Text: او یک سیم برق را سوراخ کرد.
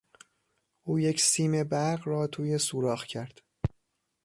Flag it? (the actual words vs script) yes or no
yes